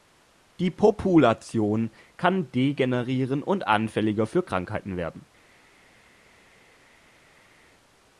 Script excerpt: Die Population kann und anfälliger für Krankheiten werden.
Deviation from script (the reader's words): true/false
true